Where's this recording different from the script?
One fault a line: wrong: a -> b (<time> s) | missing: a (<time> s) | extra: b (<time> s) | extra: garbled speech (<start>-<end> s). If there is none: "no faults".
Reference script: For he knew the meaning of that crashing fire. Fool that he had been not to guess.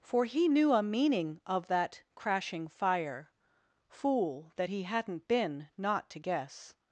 wrong: the -> a (0.7 s)
wrong: had -> hadn't (4.8 s)